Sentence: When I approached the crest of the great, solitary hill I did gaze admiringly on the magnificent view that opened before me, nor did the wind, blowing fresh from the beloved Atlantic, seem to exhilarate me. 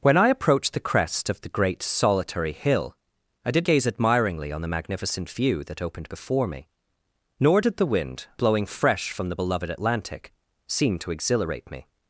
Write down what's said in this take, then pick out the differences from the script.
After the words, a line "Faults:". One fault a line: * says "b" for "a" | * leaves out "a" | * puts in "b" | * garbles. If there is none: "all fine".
When I approached the crest of the great, solitary hill I did gaze admiringly on the magnificent view that opened before me, nor did the wind, blowing fresh from the beloved Atlantic, seem to exhilarate me.
Faults:
all fine